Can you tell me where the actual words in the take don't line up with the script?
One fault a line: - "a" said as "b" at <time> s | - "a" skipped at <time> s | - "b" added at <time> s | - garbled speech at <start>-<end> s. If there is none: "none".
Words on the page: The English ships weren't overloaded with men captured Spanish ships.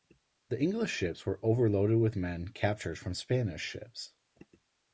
- "weren't" said as "were" at 1.3 s
- "from" added at 3.0 s